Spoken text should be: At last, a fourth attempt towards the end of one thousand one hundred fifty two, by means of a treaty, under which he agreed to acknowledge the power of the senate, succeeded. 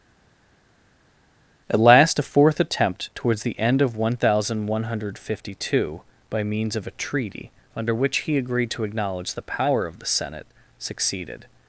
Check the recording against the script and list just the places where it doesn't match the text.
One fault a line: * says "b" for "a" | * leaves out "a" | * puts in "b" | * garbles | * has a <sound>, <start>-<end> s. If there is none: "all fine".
all fine